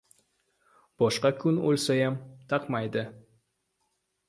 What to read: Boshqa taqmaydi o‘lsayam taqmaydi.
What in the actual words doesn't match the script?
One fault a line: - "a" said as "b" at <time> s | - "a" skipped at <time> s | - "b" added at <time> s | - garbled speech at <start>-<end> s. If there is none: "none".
- "taqmaydi" said as "kun" at 1.4 s